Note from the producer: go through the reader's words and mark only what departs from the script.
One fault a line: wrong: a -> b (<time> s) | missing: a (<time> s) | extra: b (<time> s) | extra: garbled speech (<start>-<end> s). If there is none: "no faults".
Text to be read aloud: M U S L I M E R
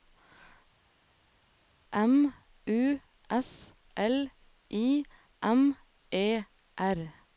no faults